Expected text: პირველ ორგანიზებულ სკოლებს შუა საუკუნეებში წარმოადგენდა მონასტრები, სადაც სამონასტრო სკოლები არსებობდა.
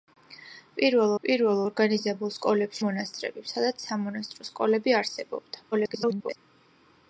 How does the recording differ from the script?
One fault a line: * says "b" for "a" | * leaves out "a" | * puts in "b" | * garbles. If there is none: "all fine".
* puts in "პირველ"
* leaves out "შუა საუკუნეებში წარმოადგენდა"
* garbles